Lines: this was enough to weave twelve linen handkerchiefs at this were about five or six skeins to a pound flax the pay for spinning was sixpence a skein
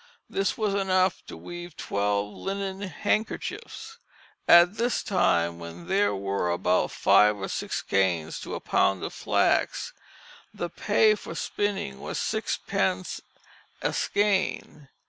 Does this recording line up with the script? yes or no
no